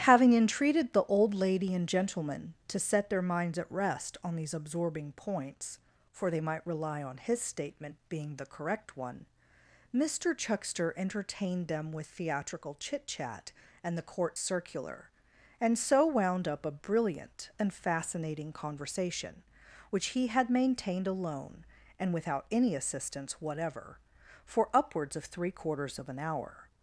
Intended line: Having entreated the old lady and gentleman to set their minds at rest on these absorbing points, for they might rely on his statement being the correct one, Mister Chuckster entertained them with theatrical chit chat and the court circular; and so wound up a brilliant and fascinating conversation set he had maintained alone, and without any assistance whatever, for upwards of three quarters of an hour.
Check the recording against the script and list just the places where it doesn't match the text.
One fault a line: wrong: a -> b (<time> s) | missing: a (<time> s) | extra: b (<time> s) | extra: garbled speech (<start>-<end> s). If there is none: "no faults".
wrong: set -> which (19.9 s)